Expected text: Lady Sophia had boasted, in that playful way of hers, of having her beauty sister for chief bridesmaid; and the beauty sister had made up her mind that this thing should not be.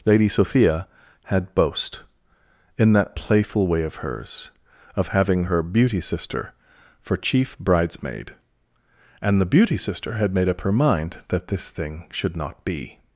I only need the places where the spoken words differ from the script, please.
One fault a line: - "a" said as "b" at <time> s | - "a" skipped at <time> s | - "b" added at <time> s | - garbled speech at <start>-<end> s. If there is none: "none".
- "boasted" said as "boast" at 1.5 s